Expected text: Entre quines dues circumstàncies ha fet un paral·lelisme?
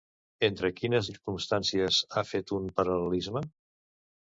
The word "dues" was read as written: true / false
false